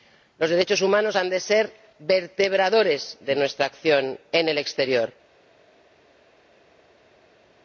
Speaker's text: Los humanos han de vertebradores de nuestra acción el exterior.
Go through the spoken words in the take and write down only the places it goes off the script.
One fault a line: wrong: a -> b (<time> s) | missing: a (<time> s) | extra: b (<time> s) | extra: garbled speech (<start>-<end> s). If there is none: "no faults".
extra: derechos (0.5 s)
extra: ser (1.4 s)
extra: en (4.3 s)